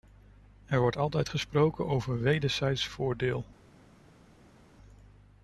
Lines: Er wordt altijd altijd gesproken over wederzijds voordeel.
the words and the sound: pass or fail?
fail